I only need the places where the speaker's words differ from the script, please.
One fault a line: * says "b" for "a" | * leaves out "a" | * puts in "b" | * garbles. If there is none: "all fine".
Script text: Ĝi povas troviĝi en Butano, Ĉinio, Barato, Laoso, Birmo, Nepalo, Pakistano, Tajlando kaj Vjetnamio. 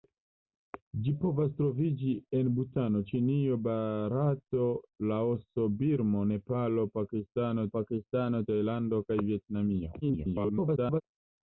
* puts in "Pakistano"
* garbles